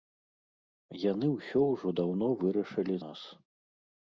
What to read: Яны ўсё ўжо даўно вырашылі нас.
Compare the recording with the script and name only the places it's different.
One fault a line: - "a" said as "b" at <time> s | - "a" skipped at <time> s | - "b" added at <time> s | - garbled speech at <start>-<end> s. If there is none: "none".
none